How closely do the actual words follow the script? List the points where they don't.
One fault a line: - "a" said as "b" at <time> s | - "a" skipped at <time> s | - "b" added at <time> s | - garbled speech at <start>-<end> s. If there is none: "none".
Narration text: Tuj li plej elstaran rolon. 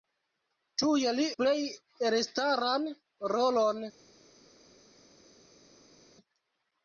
none